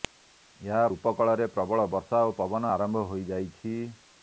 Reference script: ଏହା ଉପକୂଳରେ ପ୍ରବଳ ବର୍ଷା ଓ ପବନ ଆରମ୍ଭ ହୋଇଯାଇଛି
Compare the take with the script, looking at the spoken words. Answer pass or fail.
pass